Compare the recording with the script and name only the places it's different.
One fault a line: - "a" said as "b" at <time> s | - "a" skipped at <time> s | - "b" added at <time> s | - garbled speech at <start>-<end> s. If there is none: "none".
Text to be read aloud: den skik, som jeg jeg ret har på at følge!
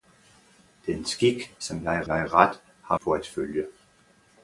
none